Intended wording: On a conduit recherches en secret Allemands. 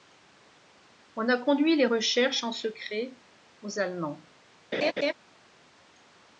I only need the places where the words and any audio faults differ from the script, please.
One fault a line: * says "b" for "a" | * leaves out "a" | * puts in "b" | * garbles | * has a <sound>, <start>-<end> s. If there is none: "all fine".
* puts in "les"
* puts in "aux"
* has a laugh, 4.7-5.1 s